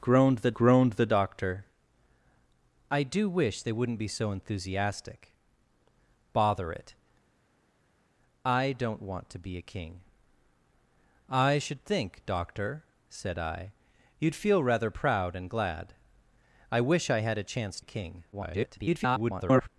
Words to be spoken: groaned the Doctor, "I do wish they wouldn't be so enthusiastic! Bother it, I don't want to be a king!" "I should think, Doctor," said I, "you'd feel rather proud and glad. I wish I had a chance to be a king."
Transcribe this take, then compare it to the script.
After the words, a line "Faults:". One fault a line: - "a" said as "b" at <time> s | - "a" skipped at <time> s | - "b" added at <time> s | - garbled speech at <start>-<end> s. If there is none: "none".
groaned the groaned the Doctor, "I do wish they wouldn't be so enthusiastic! Bother it, I don't want to be a king!" "I should think, Doctor," said I, "you'd feel rather proud and glad. I wish I had a chance a king." [garbled]
Faults:
- "groaned the" added at 0.5 s
- "to be" skipped at 17.8 s
- garbled speech at 18.3-19.7 s